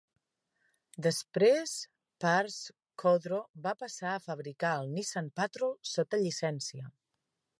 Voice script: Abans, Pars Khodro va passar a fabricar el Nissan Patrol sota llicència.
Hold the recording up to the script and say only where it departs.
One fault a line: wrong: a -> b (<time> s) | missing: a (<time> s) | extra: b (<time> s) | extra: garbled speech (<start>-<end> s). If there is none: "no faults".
wrong: Abans -> Després (1.1 s)